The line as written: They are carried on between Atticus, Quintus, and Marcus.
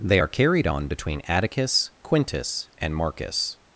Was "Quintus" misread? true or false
false